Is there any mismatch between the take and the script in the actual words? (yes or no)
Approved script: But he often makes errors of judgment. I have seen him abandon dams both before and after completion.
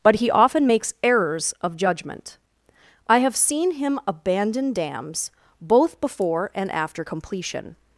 no